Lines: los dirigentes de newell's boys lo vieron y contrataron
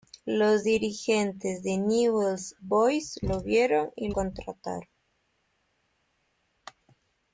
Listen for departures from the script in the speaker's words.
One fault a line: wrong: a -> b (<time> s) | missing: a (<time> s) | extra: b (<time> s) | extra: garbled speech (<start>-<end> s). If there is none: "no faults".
no faults